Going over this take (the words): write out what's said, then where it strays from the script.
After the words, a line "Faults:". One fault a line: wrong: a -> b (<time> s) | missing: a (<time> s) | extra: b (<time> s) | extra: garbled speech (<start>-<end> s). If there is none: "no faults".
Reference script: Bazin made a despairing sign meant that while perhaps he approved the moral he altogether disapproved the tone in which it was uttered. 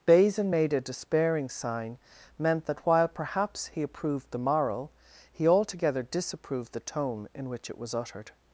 Bazin made a despairing sign meant that while perhaps he approved the moral he altogether disapproved the tone in which it was uttered.
Faults:
no faults